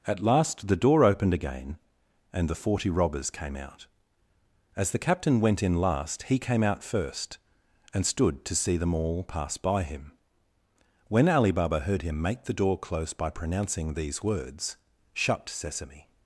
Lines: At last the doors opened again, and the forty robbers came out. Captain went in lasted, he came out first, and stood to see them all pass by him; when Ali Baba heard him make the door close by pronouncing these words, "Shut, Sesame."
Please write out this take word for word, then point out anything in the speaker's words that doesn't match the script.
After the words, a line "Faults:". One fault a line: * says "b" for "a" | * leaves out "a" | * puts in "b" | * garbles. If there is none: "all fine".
At last the door opened again, and the forty robbers came out. As the captain went in last, he came out first, and stood to see them all pass by him; when Ali Baba heard him make the door close by pronouncing these words, "Shut, Sesame."
Faults:
* says "door" for "doors"
* puts in "As the"
* says "last" for "lasted"